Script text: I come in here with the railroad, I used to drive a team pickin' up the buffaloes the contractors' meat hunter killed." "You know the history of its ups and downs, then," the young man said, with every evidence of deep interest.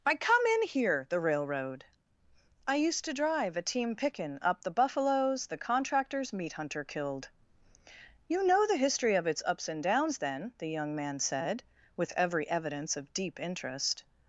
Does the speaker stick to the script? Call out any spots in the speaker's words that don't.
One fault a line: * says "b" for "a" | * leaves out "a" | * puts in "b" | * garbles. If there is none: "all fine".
* leaves out "with"